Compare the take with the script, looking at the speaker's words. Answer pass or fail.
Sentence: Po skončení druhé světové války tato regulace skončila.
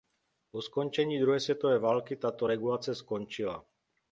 pass